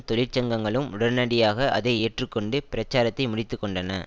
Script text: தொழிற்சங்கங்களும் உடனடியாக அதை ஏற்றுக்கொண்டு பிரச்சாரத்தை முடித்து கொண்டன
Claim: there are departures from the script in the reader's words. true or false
false